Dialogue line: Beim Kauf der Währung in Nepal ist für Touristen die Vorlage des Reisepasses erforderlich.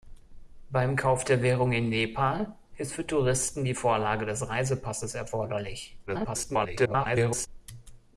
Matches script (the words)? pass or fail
fail